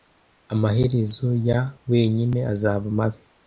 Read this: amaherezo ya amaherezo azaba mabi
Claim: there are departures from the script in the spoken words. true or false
true